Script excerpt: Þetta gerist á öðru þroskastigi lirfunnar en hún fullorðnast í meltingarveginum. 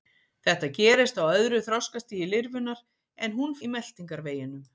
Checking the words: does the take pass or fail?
fail